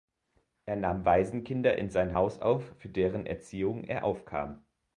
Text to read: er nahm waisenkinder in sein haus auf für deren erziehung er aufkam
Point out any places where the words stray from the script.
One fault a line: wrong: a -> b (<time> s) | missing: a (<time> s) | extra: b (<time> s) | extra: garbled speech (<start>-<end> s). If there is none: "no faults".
no faults